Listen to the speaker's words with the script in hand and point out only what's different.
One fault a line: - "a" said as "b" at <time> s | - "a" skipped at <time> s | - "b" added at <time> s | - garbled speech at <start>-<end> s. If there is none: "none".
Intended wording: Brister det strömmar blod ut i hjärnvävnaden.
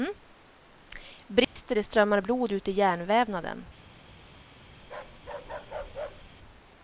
none